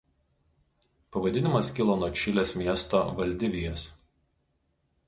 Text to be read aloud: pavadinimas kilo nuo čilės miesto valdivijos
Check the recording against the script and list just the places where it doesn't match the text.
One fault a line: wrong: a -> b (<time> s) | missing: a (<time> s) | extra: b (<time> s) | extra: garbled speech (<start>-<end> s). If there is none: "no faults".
no faults